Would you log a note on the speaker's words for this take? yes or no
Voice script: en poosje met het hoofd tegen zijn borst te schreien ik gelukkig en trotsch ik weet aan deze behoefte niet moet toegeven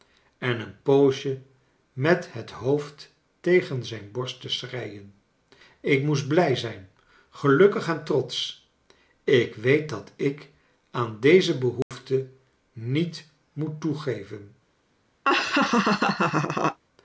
yes